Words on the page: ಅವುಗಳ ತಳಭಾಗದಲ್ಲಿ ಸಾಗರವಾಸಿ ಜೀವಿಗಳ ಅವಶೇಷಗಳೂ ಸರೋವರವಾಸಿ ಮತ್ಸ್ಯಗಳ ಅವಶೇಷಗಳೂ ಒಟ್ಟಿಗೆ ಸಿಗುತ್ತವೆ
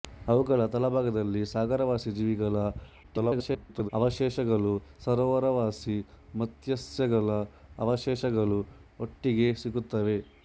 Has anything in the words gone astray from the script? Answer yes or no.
yes